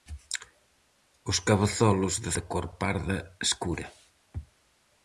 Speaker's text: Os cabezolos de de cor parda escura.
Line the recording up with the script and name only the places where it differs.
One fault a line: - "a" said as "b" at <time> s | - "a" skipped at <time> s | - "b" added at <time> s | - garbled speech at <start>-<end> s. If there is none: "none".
none